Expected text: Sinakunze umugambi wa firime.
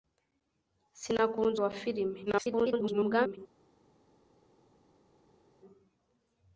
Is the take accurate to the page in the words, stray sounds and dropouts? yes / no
no